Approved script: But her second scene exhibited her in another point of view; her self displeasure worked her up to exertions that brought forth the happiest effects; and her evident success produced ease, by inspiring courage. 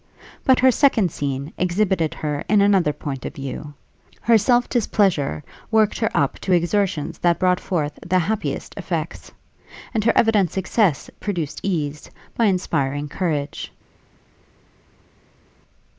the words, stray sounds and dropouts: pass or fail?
pass